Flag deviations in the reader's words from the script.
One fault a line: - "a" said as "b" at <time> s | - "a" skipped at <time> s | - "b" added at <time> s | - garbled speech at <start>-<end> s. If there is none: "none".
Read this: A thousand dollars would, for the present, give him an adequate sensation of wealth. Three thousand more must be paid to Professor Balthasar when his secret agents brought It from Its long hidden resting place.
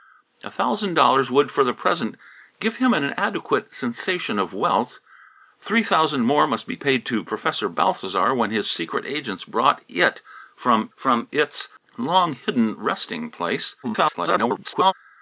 - "from" added at 10.9 s
- garbled speech at 13.8-14.9 s